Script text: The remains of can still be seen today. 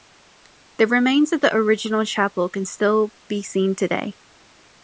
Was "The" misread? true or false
false